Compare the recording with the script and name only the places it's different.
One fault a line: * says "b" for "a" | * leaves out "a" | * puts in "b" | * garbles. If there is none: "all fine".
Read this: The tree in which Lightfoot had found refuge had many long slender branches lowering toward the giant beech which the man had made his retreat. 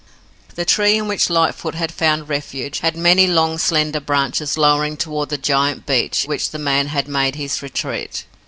all fine